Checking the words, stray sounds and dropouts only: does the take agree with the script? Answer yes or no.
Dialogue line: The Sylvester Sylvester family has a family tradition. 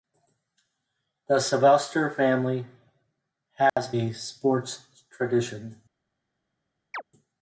no